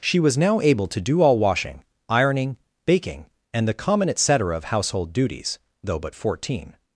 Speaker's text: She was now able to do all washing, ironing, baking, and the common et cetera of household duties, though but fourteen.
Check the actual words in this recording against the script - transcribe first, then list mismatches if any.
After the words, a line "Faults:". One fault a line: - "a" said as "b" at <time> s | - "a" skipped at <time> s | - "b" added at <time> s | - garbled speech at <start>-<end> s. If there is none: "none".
She was now able to do all washing, ironing, baking, and the common et cetera of household duties, though but fourteen.
Faults:
none